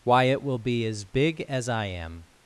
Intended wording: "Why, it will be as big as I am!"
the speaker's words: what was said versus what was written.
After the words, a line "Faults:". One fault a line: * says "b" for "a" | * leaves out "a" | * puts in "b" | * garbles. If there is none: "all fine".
"Why, it will be as big as I am!"
Faults:
all fine